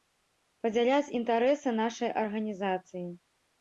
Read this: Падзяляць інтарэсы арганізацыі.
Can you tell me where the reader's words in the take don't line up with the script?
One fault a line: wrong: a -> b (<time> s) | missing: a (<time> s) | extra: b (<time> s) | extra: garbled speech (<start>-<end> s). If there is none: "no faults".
extra: нашай (1.8 s)